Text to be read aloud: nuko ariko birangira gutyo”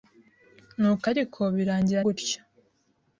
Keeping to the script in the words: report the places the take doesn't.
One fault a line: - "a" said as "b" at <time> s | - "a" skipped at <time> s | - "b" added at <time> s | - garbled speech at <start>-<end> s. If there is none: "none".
none